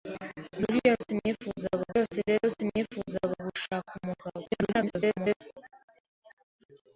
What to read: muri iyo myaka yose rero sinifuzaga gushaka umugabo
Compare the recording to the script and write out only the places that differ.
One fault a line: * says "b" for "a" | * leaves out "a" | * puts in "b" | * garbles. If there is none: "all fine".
* says "sinifuzaga" for "myaka"
* garbles